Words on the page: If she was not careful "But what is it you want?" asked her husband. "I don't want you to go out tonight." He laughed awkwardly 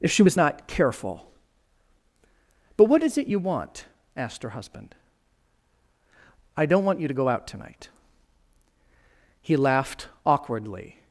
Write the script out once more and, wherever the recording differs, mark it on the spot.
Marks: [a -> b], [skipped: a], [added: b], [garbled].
If she was not careful "But what is it you want?" asked her husband. "I don't want you to go out tonight." He laughed awkwardly